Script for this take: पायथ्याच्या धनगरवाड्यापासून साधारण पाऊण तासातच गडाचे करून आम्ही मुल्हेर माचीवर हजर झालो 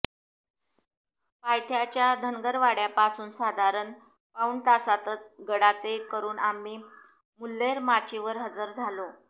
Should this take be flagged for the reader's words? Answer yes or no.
no